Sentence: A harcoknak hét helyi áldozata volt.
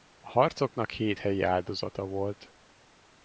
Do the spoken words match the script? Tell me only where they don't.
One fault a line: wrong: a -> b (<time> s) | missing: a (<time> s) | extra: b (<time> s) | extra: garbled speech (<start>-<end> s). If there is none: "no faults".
no faults